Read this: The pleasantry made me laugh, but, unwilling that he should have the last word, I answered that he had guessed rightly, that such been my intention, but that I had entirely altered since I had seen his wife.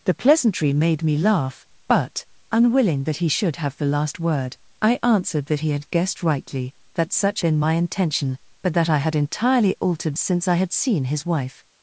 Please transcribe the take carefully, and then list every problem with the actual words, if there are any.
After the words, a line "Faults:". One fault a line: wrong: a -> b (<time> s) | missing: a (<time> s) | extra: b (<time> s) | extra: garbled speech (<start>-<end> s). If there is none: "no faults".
The pleasantry made me laugh, but, unwilling that he should have the last word, I answered that he had guessed rightly, that such been my intention, but that I had entirely altered since I had seen his wife.
Faults:
no faults